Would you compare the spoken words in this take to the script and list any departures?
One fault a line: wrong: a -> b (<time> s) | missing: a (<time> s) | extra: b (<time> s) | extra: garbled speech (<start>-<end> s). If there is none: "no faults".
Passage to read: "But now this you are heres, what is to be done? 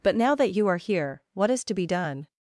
wrong: this -> that (0.3 s)
wrong: heres -> here (0.8 s)